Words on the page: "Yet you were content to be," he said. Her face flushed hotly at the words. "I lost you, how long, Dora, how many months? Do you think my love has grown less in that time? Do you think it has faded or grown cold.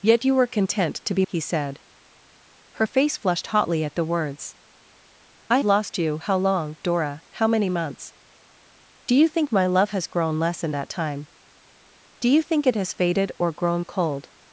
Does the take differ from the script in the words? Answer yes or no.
no